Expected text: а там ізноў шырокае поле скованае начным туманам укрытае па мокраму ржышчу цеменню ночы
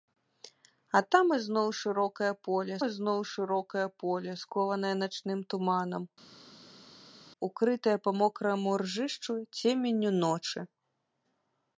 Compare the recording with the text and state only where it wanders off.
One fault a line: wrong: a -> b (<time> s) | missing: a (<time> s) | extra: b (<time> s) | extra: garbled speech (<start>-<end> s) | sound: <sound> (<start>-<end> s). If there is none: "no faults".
extra: ізноў шырокае поле (2.9 s)